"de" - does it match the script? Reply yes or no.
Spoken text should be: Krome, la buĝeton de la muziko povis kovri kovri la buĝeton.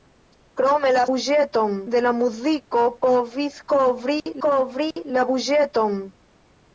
yes